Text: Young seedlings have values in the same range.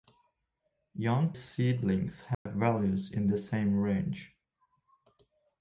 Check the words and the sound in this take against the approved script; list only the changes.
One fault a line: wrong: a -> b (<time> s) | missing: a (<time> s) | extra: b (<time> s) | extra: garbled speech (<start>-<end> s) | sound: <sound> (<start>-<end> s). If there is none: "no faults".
sound: dropout (2.3-2.5 s)